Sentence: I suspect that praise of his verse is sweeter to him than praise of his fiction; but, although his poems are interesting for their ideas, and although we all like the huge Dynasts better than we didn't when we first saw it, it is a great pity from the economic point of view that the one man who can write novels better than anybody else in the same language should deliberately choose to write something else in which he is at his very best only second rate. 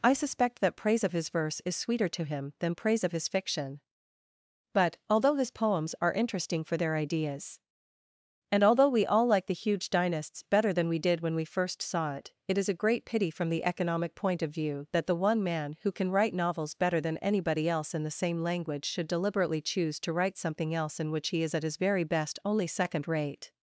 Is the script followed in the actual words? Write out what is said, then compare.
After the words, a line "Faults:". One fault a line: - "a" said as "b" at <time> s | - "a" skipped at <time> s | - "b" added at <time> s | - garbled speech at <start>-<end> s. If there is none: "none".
I suspect that praise of his verse is sweeter to him than praise of his fiction; but, although his poems are interesting for their ideas, and although we all like the huge Dynasts better than we did when we first saw it, it is a great pity from the economic point of view that the one man who can write novels better than anybody else in the same language should deliberately choose to write something else in which he is at his very best only second rate.
Faults:
- "didn't" said as "did" at 11.0 s